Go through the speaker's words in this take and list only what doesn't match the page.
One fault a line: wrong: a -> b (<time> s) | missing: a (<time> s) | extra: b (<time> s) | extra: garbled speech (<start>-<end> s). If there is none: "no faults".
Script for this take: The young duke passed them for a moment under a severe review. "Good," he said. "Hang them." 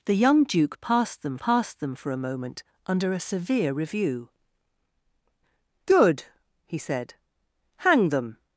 extra: passed them (1.4 s)